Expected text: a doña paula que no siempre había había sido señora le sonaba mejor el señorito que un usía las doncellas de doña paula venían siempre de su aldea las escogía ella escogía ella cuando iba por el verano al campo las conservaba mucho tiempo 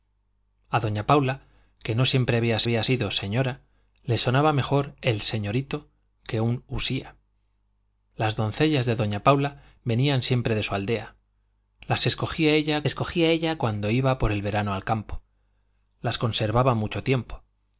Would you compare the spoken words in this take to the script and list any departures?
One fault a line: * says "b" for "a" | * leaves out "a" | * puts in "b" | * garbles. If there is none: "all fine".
all fine